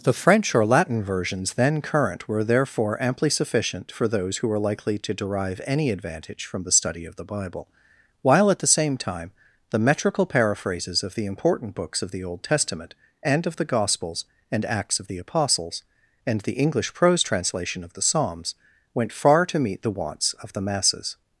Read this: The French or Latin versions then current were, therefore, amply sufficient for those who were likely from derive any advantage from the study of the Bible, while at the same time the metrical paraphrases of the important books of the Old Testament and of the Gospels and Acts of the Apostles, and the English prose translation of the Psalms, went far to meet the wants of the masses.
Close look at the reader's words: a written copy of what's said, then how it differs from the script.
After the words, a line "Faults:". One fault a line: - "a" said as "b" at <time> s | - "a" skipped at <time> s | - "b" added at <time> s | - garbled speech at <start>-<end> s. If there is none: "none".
The French or Latin versions then current were, therefore, amply sufficient for those who were likely to derive any advantage from the study of the Bible, while at the same time the metrical paraphrases of the important books of the Old Testament and of the Gospels and Acts of the Apostles, and the English prose translation of the Psalms, went far to meet the wants of the masses.
Faults:
- "from" said as "to" at 5.0 s